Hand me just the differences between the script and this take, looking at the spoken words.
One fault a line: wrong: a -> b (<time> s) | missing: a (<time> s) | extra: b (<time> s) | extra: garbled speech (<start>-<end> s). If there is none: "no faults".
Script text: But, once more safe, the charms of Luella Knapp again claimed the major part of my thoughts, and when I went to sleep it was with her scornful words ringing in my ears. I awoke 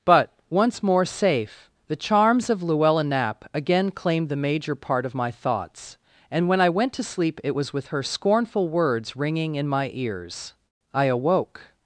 no faults